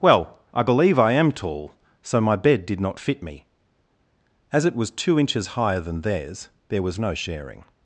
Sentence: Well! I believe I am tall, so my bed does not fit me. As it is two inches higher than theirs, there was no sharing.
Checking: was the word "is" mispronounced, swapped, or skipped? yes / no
yes